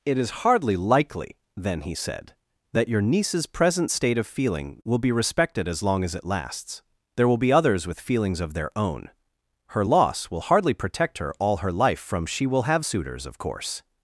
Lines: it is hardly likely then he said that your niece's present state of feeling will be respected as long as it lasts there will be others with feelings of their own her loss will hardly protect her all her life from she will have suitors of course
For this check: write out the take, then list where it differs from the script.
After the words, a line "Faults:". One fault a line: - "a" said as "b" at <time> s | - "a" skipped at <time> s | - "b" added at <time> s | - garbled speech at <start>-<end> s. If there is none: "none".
it is hardly likely then he said that your niece's present state of feeling will be respected as long as it lasts there will be others with feelings of their own her loss will hardly protect her all her life from she will have suitors of course
Faults:
none